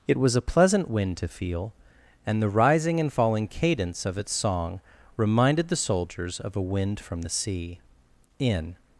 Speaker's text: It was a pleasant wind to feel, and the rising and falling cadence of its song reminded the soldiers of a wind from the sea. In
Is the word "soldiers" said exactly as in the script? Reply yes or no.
yes